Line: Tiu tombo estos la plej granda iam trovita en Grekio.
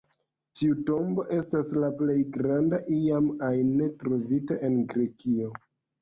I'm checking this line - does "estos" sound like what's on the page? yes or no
no